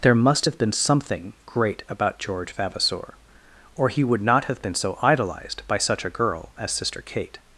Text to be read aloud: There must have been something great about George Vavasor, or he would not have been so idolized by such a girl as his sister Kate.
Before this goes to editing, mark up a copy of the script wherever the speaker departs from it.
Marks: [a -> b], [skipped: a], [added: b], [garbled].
There must have been something great about George Vavasor, or he would not have been so idolized by such a girl as [skipped: his] sister Kate.